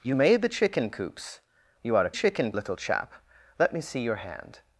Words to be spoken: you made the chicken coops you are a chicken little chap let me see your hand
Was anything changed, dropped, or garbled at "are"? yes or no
no